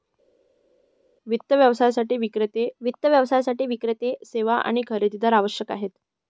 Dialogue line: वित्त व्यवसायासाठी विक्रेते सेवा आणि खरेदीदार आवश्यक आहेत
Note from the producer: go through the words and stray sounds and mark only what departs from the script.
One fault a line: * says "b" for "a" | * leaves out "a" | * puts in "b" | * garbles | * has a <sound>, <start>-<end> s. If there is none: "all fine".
* puts in "वित्त व्यवसायासाठी विक्रेते"